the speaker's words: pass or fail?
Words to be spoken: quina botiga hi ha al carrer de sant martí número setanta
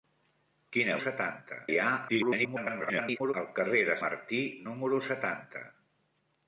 fail